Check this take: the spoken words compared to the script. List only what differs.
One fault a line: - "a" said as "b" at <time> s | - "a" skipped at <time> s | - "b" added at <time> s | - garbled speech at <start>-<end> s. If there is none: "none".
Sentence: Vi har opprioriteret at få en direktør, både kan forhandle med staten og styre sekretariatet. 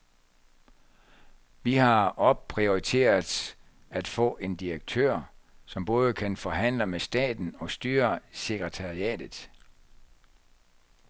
- "som" added at 5.6 s